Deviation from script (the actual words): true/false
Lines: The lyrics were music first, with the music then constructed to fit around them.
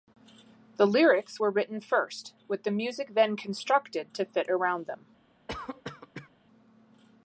true